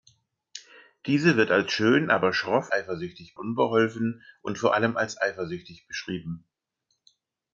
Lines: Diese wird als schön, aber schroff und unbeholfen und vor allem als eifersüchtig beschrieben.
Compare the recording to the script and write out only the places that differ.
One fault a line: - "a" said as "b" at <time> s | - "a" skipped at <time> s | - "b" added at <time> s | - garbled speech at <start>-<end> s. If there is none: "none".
- "und" said as "eifersüchtig" at 2.7 s